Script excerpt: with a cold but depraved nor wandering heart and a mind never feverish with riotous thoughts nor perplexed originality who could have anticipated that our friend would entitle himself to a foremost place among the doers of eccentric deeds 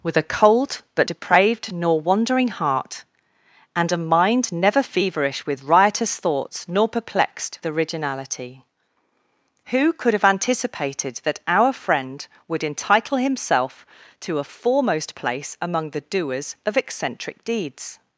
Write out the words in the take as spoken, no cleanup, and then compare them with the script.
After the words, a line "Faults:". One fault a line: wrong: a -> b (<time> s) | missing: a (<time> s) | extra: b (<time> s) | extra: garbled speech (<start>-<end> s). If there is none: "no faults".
with a cold but depraved nor wandering heart and a mind never feverish with riotous thoughts nor perplexed originality who could have anticipated that our friend would entitle himself to a foremost place among the doers of eccentric deeds
Faults:
no faults